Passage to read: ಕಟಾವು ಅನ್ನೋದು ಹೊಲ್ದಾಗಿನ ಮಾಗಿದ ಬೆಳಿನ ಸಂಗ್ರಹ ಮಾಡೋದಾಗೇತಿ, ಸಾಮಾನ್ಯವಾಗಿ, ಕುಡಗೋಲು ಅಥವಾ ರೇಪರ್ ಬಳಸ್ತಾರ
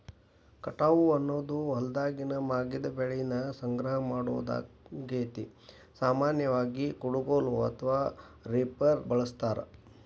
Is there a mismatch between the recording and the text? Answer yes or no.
no